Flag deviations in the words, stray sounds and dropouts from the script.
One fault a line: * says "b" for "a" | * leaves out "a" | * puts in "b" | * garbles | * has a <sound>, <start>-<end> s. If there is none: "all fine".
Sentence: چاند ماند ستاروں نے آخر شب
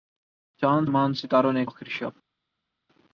all fine